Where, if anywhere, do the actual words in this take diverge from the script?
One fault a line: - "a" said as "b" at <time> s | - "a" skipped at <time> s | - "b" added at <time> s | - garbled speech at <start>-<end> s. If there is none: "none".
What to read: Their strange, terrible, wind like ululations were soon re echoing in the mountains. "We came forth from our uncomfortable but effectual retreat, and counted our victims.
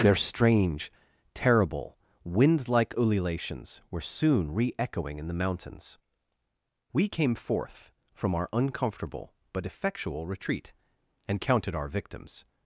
none